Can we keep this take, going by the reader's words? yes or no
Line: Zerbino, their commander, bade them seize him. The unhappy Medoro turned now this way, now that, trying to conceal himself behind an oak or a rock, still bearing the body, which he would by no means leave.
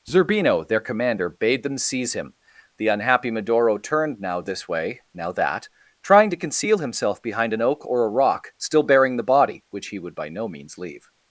yes